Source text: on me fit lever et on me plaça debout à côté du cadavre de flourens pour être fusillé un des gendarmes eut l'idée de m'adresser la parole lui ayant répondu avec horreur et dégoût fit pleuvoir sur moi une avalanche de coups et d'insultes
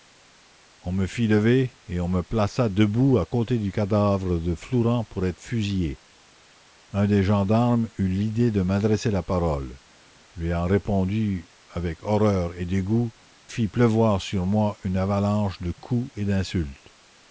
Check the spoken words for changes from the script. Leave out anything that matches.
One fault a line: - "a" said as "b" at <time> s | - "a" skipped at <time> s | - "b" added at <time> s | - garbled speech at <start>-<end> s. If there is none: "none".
none